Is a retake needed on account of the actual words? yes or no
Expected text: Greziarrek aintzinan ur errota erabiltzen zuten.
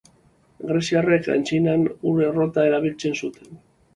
no